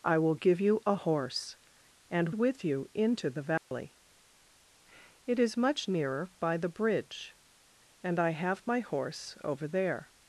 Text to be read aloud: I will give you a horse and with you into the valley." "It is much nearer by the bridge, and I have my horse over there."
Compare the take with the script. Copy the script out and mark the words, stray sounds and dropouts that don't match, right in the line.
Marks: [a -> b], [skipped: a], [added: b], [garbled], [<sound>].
I will give you a horse and with you into the valley." [dropout] "It is much nearer by the bridge, and I have my horse over there."